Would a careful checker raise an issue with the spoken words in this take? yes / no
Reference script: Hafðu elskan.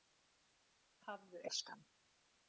no